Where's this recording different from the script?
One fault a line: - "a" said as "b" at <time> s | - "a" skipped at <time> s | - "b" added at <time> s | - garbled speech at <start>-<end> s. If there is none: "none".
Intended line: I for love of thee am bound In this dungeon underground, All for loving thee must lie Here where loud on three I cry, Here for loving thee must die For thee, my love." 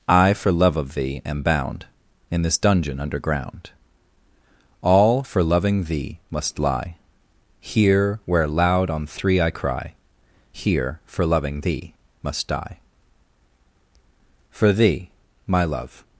none